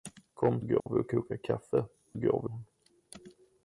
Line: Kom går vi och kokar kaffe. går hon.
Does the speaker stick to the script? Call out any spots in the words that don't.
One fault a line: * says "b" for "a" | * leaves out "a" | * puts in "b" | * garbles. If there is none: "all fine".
all fine